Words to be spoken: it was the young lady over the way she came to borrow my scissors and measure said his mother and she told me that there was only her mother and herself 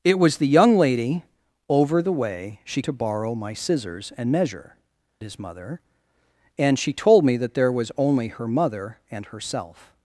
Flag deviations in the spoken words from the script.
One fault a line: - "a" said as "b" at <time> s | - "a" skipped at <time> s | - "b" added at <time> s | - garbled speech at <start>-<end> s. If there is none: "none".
- "came" skipped at 2.8 s
- "said" skipped at 4.8 s